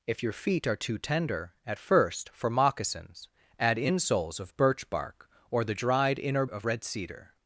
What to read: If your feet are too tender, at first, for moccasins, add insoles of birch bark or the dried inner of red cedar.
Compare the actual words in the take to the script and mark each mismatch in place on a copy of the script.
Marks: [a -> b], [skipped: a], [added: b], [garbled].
If your feet are too tender, at first, for moccasins, add insoles of birch bark or the dried inner of red cedar.